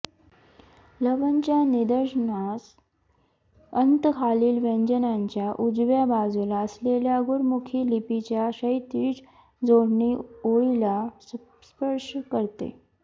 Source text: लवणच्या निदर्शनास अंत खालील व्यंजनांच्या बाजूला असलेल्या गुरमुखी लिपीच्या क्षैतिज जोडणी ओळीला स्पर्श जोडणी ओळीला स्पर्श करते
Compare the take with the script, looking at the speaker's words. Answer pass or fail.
fail